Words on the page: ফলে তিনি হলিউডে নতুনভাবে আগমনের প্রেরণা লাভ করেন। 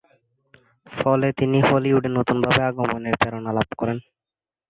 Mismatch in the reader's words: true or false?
false